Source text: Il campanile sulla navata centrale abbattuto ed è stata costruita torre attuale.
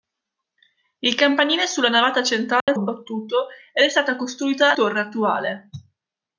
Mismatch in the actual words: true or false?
false